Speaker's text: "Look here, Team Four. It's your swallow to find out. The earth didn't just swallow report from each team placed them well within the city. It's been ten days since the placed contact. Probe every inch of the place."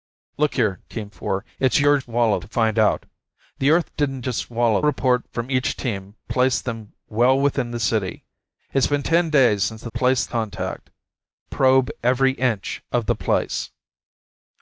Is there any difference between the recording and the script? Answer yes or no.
no